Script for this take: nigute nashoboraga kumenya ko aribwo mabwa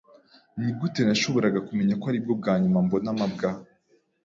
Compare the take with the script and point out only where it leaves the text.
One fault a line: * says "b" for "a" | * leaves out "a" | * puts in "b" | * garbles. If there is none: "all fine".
* puts in "bwa nyuma mbona"